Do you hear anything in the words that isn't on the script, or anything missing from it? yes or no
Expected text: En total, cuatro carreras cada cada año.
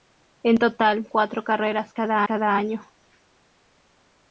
no